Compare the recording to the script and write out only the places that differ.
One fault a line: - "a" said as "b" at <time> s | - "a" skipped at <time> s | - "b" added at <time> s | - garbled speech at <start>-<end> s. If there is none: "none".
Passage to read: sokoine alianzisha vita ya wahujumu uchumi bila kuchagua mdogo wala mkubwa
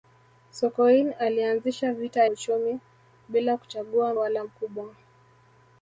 - "ya wahujumu" skipped at 2.2 s
- "mdogo" skipped at 4.1 s